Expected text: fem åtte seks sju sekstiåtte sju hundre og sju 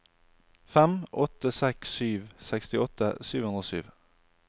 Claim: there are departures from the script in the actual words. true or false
false